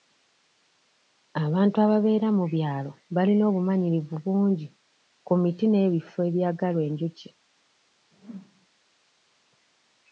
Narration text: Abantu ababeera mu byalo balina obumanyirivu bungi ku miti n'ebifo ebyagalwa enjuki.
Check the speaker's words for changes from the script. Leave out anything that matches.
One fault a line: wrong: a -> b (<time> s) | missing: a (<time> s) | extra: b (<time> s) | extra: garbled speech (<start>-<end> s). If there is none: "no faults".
no faults